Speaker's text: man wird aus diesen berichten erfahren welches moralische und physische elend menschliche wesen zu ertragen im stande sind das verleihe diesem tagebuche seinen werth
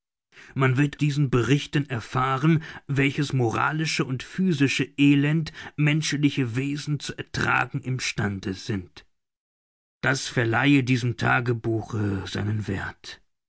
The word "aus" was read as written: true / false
false